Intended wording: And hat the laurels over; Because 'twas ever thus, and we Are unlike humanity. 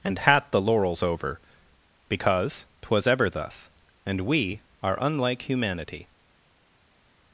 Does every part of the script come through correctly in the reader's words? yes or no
yes